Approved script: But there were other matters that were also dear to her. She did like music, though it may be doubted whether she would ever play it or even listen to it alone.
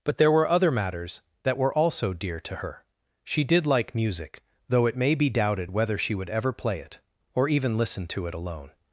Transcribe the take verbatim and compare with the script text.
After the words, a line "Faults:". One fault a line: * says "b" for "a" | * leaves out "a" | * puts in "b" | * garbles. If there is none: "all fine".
But there were other matters that were also dear to her. She did like music, though it may be doubted whether she would ever play it or even listen to it alone.
Faults:
all fine